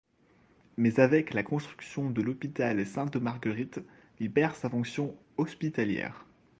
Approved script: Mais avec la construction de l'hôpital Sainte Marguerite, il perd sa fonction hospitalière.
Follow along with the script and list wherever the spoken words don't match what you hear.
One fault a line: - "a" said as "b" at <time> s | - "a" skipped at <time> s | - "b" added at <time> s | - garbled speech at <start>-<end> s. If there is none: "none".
none